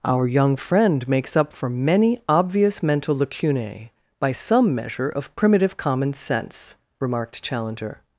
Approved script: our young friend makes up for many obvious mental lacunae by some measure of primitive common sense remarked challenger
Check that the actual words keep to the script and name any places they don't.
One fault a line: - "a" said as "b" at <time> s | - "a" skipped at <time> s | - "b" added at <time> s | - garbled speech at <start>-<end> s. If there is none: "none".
none